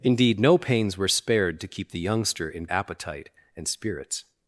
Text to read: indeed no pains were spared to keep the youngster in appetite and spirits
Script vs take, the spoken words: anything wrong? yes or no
no